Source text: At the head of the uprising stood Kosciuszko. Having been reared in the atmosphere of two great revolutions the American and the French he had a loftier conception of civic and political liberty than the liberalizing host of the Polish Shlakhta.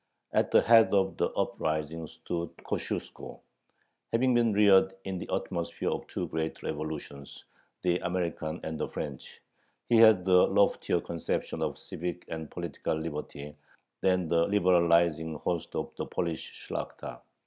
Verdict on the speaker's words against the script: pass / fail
pass